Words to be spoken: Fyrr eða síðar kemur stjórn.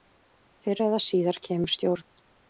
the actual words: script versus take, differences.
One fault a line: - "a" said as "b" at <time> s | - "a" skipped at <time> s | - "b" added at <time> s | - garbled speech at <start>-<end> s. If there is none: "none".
none